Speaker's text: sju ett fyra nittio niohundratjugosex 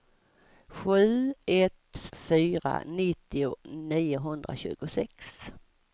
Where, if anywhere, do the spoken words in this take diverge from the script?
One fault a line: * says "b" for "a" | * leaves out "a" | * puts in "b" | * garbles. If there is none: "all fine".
all fine